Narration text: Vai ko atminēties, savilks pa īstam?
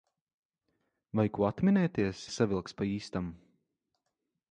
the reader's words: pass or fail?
pass